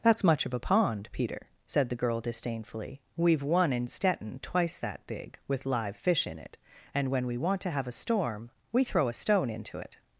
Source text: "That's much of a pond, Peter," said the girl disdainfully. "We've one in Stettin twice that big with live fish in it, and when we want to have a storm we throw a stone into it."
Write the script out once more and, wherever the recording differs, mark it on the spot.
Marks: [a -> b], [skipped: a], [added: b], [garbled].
"That's much of a pond, Peter," said the girl disdainfully. "We've one in Stettin twice that big with live fish in it, and when we want to have a storm we throw a stone into it."